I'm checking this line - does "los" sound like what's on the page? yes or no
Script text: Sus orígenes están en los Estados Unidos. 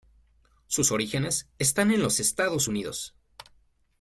yes